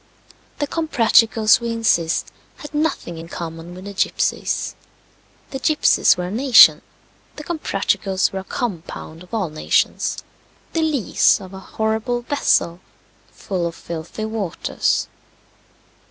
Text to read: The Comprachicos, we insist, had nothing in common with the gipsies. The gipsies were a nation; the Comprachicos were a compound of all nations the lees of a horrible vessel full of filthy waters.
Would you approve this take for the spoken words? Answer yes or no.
yes